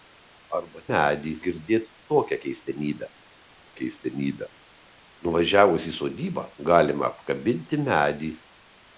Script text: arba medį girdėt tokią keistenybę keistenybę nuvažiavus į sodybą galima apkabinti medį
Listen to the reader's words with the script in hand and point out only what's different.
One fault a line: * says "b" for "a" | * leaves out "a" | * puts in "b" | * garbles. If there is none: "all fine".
all fine